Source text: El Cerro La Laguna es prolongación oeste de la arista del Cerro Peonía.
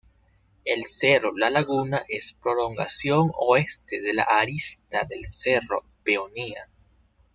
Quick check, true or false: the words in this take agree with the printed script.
true